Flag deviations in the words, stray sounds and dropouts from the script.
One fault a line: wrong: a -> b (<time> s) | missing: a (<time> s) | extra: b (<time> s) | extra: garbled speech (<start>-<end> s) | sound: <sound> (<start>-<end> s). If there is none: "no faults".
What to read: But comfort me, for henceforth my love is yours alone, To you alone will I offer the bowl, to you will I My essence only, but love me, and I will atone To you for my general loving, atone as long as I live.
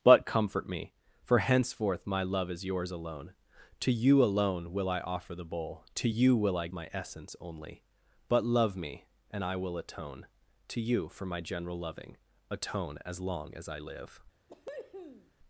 sound: cough (14.5-15.3 s)